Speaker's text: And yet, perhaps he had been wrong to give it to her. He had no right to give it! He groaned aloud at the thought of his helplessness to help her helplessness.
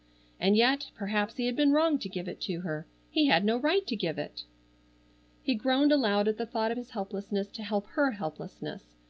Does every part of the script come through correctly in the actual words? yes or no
yes